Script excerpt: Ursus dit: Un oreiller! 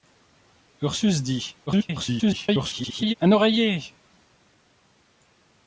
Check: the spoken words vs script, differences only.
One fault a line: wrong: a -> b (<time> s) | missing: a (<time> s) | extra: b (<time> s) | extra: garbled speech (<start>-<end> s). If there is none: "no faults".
extra: garbled speech (1.7-3.1 s)